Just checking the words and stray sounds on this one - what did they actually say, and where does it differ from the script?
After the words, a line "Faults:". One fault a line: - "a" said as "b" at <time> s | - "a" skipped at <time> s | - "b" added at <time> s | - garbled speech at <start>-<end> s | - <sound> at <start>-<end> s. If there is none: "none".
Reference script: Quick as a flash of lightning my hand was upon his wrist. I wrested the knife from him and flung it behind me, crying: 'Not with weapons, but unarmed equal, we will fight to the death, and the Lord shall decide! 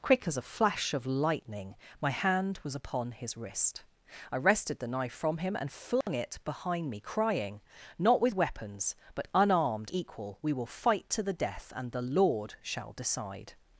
Quick as a flash of lightning my hand was upon his wrist. I wrested the knife from him and flung it behind me, crying: 'Not with weapons, but unarmed equal, we will fight to the death, and the Lord shall decide!
Faults:
- dropout at 6.0-6.1 s